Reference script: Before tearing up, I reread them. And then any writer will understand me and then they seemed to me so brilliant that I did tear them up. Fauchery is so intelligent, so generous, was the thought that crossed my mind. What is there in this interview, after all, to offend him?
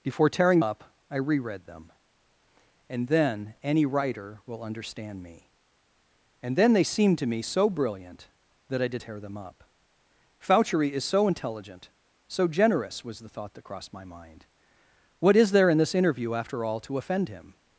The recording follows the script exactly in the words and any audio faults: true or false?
true